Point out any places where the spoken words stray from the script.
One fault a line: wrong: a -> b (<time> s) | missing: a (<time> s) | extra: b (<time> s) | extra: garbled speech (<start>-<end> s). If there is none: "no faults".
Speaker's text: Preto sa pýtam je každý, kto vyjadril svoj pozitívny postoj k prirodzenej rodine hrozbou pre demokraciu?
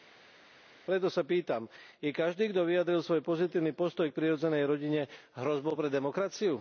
no faults